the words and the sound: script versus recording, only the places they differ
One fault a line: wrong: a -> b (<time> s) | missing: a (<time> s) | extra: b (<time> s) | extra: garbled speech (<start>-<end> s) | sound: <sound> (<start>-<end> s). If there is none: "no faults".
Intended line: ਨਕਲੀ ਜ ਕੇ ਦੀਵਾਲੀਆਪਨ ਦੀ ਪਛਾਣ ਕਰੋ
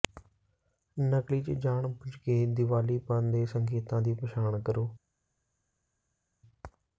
extra: ਜਾਣਬੁੱਝ (1.6 s)
extra: ਦੇ ਸੰਕੇਤਾਂ (3.3 s)